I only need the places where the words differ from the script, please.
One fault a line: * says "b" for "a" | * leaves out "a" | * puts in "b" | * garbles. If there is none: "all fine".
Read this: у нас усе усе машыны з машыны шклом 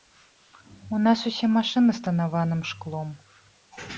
* leaves out "усе"
* says "танаваным" for "машыны"